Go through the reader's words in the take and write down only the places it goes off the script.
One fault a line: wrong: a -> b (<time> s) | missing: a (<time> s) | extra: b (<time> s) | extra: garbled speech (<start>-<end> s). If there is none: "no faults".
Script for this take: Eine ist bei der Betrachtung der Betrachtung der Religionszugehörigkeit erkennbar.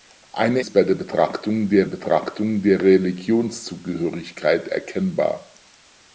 no faults